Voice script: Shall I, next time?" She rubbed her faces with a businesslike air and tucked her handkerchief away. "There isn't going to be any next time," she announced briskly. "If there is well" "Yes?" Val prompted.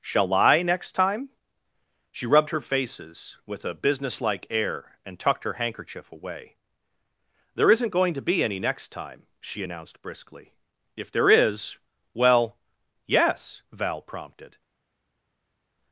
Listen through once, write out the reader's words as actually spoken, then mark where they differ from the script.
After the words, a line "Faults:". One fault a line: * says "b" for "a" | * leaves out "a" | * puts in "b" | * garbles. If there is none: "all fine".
Shall I, next time?" She rubbed her faces with a businesslike air and tucked her handkerchief away. "There isn't going to be any next time," she announced briskly. "If there is well" "Yes?" Val prompted.
Faults:
all fine